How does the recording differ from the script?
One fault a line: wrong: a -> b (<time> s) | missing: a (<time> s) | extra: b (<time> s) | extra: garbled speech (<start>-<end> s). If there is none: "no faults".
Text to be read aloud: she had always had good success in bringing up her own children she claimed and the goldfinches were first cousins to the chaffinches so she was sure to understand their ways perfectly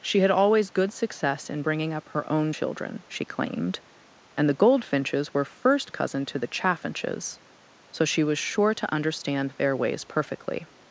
missing: had (0.7 s)
wrong: cousins -> cousin (5.9 s)